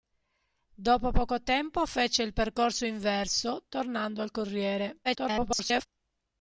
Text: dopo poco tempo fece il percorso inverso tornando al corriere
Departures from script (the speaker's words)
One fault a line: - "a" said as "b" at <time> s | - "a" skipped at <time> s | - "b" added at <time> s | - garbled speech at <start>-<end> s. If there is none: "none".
- garbled speech at 5.0-5.9 s